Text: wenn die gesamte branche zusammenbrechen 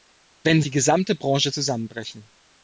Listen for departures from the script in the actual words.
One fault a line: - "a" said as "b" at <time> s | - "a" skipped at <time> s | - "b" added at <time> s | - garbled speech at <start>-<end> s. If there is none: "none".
none